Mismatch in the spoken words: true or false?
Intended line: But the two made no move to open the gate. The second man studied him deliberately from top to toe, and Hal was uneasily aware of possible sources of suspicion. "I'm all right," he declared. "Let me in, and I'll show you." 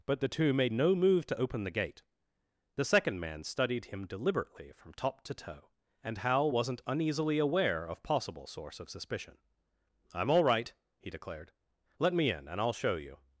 true